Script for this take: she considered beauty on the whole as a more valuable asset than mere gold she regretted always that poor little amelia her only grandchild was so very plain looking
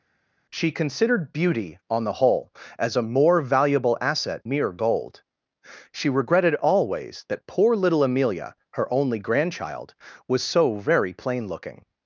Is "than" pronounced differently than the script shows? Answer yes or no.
yes